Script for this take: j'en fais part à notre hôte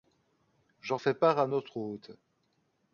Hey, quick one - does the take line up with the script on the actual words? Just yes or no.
yes